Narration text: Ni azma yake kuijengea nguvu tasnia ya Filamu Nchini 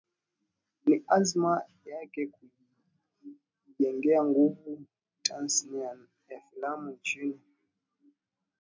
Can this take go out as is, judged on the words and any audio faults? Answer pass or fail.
pass